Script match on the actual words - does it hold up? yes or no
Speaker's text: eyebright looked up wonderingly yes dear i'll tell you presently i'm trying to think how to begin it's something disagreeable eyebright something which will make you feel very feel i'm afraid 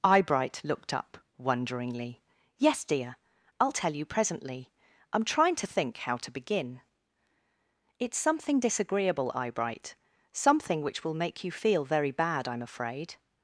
no